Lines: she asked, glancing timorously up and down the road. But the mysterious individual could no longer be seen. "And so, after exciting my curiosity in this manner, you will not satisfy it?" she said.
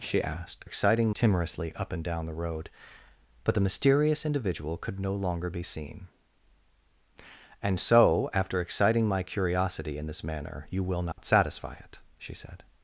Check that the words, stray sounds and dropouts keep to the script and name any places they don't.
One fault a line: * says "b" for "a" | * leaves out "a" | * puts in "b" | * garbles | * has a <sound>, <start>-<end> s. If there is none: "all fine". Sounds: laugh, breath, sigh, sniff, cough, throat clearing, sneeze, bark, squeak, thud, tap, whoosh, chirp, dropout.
* says "exciting" for "glancing"
* has a dropout, 11.1-11.2 s